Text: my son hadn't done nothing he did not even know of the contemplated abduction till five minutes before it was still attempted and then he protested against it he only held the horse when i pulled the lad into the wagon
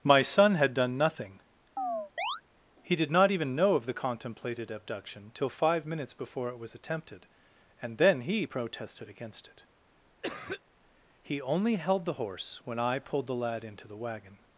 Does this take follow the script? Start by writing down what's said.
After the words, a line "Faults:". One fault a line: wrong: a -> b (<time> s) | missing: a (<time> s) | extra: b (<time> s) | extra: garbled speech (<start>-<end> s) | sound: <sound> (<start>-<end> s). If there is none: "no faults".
my son had done nothing he did not even know of the contemplated abduction till five minutes before it was attempted and then he protested against it he only held the horse when i pulled the lad into the wagon
Faults:
wrong: hadn't -> had (0.6 s)
sound: chirp (1.8-2.4 s)
missing: still (6.7 s)
sound: cough (10.2-10.6 s)